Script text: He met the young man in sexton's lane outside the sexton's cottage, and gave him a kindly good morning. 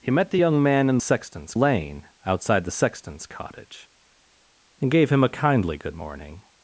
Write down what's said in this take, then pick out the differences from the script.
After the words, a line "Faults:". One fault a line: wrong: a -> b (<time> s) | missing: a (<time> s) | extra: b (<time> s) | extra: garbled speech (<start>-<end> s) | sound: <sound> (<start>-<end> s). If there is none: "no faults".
He met the young man in sexton's lane outside the sexton's cottage, and gave him a kindly good morning.
Faults:
no faults